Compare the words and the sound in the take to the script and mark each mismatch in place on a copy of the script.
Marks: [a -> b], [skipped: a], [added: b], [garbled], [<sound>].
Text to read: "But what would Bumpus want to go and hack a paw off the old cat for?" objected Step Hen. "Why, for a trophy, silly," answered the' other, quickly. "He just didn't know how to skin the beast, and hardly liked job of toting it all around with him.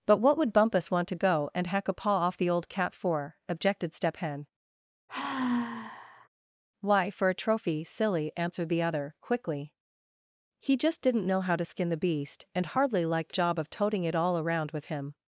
"But what would Bumpus want to go and hack a paw off the old cat for?" objected Step Hen. [sigh] "Why, for a trophy, silly," answered the' other, quickly. "He just didn't know how to skin the beast, and hardly liked job of toting it all around with him.